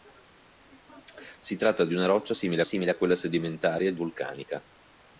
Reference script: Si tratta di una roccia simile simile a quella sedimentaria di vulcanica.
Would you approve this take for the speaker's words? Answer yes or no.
yes